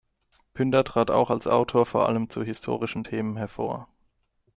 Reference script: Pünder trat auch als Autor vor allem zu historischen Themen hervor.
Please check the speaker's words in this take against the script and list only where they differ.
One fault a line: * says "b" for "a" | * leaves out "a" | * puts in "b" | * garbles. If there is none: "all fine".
all fine